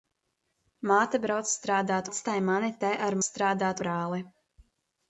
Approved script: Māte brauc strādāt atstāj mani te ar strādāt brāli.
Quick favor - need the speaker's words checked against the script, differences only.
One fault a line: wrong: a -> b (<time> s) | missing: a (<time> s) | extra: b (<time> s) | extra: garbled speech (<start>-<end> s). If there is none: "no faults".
no faults